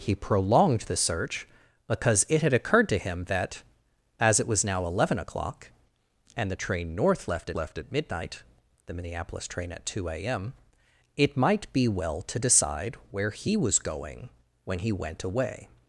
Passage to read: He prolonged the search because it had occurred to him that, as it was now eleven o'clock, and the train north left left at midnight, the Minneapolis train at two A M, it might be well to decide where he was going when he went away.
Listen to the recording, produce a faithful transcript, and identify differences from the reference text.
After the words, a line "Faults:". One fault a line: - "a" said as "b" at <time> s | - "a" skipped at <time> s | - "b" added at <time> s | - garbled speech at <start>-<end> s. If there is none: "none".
He prolonged the search because it had occurred to him that, as it was now eleven o'clock, and the train north left left at midnight, the Minneapolis train at two A M, it might be well to decide where he was going when he went away.
Faults:
none